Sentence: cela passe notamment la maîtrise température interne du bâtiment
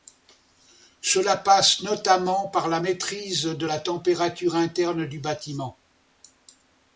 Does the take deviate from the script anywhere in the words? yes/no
yes